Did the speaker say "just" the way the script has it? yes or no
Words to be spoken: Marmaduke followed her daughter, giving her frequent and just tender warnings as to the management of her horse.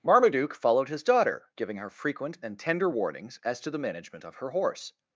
no